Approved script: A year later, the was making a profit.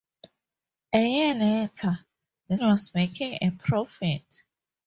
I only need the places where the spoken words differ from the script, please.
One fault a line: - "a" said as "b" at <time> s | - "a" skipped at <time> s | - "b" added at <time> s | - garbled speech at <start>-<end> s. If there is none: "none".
none